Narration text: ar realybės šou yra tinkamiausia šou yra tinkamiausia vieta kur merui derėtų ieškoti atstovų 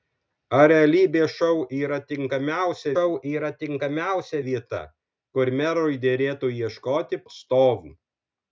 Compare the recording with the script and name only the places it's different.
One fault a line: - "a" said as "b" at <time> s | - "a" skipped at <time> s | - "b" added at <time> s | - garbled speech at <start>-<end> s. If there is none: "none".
none